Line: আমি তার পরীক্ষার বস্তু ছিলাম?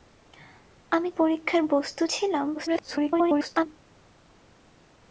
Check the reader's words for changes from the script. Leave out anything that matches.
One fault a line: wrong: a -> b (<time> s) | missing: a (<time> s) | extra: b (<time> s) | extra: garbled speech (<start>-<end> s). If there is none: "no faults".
missing: তার (1.1 s)
extra: garbled speech (2.5-3.7 s)